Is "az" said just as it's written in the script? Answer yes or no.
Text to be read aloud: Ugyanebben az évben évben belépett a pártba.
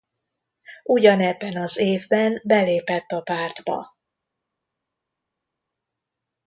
yes